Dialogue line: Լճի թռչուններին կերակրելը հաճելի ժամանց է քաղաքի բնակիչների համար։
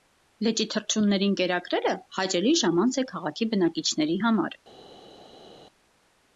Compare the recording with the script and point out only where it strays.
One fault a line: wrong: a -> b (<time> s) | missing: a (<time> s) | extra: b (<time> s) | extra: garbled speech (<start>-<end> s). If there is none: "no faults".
no faults